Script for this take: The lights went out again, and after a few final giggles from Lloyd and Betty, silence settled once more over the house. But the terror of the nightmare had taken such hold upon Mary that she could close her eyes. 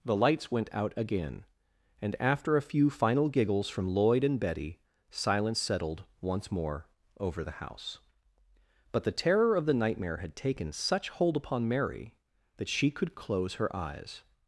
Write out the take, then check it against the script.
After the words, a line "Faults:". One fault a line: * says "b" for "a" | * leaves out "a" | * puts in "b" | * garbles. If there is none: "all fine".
The lights went out again, and after a few final giggles from Lloyd and Betty, silence settled once more over the house. But the terror of the nightmare had taken such hold upon Mary that she could close her eyes.
Faults:
all fine